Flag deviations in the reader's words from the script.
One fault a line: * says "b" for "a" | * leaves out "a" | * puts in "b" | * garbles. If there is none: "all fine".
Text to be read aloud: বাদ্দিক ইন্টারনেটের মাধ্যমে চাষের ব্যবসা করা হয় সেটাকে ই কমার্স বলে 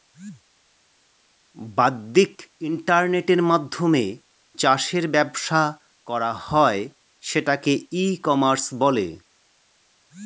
all fine